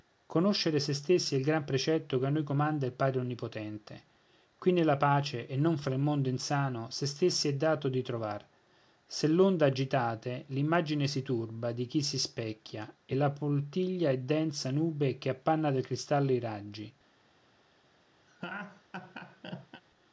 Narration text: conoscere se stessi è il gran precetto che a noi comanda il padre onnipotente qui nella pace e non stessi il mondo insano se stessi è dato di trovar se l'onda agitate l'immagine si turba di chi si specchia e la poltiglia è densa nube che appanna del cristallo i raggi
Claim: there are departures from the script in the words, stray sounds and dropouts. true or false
true